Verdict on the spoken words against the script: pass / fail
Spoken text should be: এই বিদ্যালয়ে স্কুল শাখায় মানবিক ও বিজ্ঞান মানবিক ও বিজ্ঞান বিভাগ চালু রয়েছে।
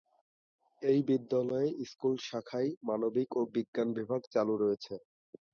fail